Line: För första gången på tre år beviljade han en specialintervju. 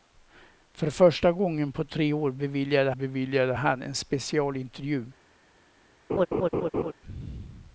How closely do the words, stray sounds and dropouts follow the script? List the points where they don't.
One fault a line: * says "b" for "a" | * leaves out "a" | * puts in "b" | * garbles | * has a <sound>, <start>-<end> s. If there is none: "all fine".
* puts in "beviljade"
* has a laugh, 6.1-6.9 s